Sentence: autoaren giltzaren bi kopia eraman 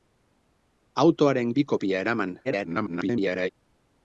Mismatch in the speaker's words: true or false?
true